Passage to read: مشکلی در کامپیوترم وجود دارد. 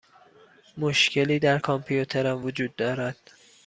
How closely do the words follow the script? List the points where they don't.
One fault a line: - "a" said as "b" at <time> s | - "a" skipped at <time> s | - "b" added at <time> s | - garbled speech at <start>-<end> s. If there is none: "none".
none